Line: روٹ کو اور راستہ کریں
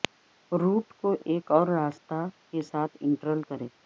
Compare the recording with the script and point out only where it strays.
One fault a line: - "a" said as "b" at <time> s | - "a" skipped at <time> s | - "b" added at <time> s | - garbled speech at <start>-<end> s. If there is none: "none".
- "ایک" added at 1.2 s
- "کے ساتھ انٹرل" added at 2.5 s